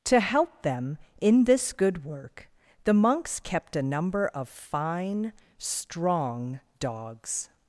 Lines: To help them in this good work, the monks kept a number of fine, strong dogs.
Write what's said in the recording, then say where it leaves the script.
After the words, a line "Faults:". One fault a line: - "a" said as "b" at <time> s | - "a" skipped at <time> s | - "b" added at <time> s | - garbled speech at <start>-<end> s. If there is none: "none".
To help them in this good work, the monks kept a number of fine, strong dogs.
Faults:
none